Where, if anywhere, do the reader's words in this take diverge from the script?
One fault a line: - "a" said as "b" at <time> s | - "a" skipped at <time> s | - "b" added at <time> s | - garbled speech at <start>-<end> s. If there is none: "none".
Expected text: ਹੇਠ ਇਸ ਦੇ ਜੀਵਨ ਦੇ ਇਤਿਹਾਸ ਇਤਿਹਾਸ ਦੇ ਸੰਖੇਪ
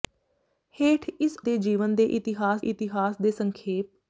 none